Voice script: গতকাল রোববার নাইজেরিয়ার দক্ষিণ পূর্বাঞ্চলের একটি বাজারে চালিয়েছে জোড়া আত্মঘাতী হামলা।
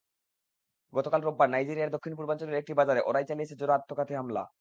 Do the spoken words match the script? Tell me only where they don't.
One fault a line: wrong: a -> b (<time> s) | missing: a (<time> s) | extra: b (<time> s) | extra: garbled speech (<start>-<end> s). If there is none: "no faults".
extra: ওরাই (3.0 s)